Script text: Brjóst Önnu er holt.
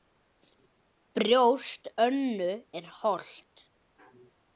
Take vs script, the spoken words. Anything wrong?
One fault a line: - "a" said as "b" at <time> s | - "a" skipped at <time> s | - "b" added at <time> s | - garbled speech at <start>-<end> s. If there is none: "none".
none